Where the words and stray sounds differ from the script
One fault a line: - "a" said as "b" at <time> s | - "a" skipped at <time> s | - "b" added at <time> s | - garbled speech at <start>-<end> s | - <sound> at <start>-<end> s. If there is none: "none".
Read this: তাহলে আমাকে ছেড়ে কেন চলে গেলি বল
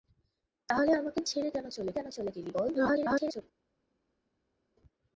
- "কেন চলে" added at 1.9 s
- garbled speech at 2.7-3.4 s